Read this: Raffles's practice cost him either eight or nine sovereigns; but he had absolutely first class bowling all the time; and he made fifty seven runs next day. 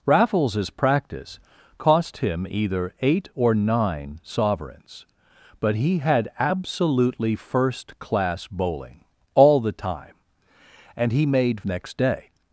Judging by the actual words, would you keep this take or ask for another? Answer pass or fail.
fail